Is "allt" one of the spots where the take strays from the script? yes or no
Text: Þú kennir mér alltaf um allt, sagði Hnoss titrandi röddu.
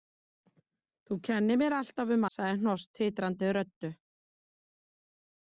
yes